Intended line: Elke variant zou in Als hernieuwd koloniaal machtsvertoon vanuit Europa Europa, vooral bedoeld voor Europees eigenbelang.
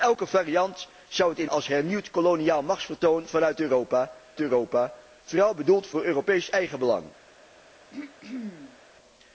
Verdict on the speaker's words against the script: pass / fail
pass